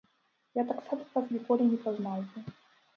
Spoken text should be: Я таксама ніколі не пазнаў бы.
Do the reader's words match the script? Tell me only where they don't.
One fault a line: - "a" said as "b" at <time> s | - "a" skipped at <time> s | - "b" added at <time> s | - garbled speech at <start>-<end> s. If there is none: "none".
- "вас" added at 1.1 s